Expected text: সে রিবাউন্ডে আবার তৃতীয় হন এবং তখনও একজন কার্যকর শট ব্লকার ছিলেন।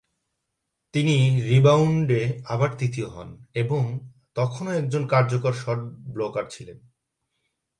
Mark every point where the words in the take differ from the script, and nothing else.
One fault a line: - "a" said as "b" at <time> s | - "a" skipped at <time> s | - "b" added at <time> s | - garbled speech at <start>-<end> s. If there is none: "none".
- "সে" said as "তিনি" at 0.9 s